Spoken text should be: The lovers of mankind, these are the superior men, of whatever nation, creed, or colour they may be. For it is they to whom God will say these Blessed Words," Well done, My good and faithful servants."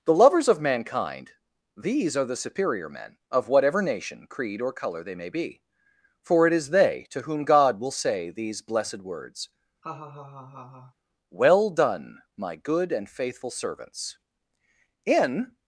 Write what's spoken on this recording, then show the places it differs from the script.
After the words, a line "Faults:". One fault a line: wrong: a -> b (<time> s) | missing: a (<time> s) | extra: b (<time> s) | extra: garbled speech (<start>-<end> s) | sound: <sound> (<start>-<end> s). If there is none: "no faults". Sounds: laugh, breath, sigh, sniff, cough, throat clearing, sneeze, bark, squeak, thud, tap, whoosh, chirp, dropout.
The lovers of mankind, these are the superior men, of whatever nation, creed, or colour they may be. For it is they to whom God will say these Blessed Words," Well done, My good and faithful servants." In
Faults:
sound: laugh (9.8-10.9 s)
extra: In (15.0 s)